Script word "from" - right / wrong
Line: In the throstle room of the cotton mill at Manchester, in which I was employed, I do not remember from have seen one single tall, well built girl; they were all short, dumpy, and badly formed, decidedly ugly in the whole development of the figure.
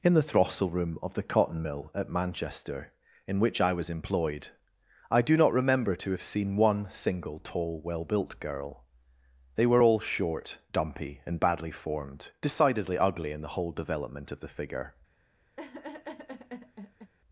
wrong